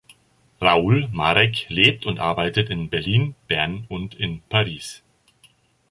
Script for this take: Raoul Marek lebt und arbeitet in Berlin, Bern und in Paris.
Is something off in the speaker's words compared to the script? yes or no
no